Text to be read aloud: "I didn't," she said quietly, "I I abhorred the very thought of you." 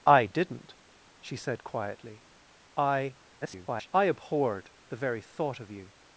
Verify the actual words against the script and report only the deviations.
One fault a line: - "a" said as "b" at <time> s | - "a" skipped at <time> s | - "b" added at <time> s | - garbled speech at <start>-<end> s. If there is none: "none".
- garbled speech at 3.4-3.9 s